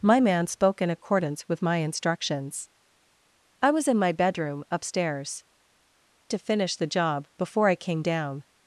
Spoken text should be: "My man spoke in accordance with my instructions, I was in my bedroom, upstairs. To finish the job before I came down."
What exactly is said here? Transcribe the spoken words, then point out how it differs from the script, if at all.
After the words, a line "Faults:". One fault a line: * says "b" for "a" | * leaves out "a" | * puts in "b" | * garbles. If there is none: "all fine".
"My man spoke in accordance with my instructions, I was in my bedroom, upstairs. To finish the job before I came down."
Faults:
all fine